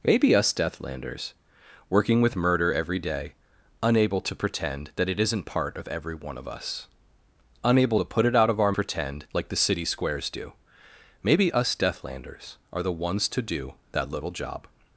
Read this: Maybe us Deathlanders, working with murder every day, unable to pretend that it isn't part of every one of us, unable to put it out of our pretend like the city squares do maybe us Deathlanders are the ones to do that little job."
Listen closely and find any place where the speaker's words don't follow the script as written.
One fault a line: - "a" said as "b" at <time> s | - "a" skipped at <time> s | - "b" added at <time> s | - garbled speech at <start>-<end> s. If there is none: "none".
none